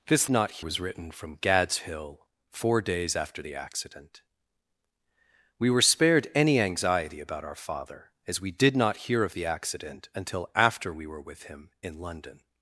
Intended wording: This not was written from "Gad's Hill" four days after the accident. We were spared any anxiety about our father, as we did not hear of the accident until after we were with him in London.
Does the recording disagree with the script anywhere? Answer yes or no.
no